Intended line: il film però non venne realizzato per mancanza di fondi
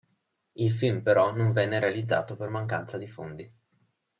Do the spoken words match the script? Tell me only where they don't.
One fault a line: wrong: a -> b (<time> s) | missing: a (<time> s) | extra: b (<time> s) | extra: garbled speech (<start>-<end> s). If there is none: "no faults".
no faults